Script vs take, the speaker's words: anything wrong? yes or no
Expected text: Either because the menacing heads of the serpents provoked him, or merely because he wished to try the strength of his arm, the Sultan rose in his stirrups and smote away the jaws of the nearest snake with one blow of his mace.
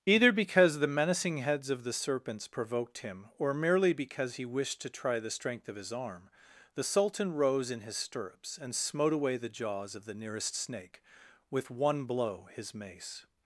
yes